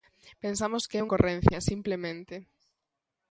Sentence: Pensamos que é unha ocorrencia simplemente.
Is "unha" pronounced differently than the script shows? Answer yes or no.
yes